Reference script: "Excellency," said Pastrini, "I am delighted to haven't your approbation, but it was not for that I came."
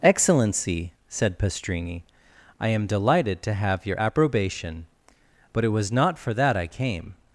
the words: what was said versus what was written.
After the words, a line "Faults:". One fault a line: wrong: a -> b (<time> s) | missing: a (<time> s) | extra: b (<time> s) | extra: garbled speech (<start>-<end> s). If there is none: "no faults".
"Excellency," said Pastrini, "I am delighted to have your approbation, but it was not for that I came."
Faults:
wrong: haven't -> have (3.5 s)